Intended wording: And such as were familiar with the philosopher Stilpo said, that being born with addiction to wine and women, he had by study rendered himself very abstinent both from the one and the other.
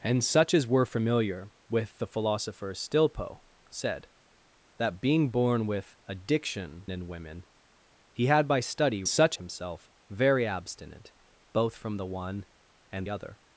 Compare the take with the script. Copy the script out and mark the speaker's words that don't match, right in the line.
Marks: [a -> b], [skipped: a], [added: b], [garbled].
And such as were familiar with the philosopher Stilpo said, that being born with addiction [skipped: to wine] and women, he had by study [rendered -> such] himself very abstinent both from the one and [skipped: the] other.